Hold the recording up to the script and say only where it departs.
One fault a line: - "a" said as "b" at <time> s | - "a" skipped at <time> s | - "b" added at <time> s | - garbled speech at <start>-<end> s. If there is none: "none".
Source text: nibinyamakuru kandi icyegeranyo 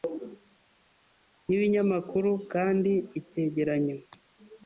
none